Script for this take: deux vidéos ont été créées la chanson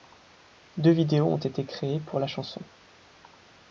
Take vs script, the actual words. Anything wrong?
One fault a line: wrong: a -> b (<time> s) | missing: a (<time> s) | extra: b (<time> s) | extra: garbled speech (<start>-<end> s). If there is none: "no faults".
extra: pour (2.0 s)